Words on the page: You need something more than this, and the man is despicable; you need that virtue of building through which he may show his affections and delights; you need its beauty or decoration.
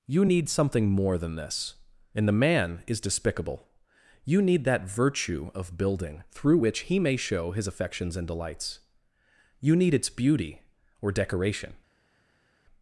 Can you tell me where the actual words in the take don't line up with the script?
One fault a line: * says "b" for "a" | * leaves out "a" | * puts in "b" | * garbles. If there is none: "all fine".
all fine